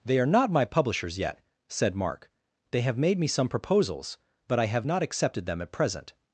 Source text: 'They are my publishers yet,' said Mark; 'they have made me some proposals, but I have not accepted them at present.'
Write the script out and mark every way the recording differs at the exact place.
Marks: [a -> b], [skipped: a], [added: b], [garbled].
'They are [added: not] my publishers yet,' said Mark; 'they have made me some proposals, but I have not accepted them at present.'